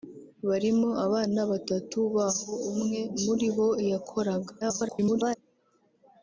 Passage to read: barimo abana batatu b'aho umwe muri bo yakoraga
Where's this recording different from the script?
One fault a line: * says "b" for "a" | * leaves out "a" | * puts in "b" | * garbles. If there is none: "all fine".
* garbles